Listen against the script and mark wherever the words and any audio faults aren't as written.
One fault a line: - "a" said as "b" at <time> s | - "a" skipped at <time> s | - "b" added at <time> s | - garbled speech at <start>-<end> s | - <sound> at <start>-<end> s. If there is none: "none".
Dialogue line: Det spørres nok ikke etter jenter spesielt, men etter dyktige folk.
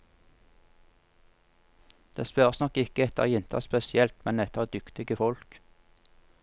none